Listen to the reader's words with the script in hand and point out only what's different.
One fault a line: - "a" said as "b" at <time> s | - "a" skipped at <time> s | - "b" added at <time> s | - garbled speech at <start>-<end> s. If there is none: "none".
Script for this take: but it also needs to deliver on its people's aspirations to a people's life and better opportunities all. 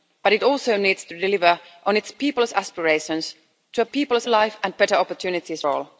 none